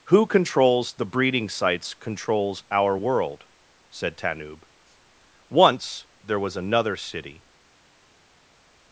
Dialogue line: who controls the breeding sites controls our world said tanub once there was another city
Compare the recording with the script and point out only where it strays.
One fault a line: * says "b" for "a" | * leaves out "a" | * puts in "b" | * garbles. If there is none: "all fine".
all fine